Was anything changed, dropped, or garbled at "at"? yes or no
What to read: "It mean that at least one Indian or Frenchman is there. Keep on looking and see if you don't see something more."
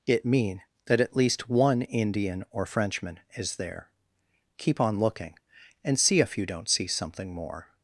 no